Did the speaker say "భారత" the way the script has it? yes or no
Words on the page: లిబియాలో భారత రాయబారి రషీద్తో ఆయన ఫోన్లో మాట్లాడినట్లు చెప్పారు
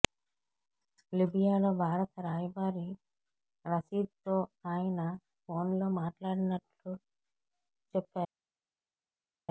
yes